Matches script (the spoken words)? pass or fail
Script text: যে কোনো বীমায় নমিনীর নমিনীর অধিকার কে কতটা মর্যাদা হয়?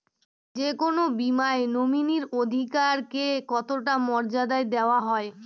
fail